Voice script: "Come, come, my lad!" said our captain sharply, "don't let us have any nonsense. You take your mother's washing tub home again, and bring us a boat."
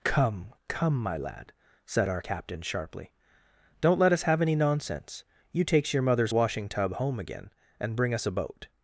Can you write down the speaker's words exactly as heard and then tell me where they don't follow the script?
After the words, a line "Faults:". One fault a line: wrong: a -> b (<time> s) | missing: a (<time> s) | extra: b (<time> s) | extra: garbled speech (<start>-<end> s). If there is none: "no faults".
"Come, come, my lad!" said our captain sharply, "don't let us have any nonsense. You takes your mother's washing tub home again, and bring us a boat."
Faults:
wrong: take -> takes (5.6 s)